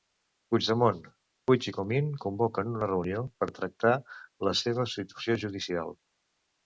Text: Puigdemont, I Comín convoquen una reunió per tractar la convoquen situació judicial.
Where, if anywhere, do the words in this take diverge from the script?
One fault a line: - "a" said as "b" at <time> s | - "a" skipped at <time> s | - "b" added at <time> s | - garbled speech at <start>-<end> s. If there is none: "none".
- "Puig" added at 1.5 s
- "convoquen" said as "seva" at 4.6 s